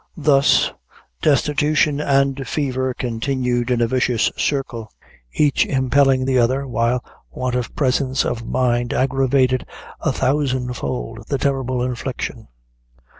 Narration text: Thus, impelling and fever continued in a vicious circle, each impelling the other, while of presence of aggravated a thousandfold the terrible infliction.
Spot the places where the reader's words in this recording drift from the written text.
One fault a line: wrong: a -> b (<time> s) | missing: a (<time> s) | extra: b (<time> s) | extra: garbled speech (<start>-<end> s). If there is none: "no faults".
wrong: impelling -> destitution (1.2 s)
extra: want (7.3 s)
extra: mind (8.5 s)